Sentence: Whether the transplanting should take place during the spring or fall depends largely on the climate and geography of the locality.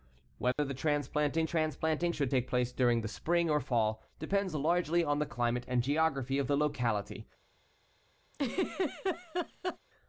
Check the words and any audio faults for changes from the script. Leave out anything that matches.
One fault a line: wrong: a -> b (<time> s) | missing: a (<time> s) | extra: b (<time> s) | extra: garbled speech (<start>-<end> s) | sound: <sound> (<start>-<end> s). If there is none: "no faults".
sound: dropout (0.5-0.6 s)
extra: transplanting (1.4 s)
sound: laugh (8.3-9.8 s)